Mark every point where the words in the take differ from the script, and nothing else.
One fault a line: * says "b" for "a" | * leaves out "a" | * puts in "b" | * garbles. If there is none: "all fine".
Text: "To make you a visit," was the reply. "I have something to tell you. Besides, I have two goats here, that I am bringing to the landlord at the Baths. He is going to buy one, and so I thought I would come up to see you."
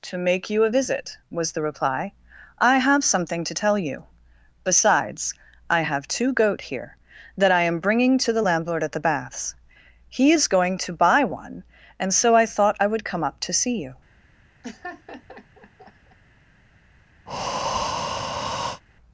* says "goat" for "goats"